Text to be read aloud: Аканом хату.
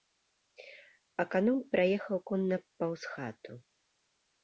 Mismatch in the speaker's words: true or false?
true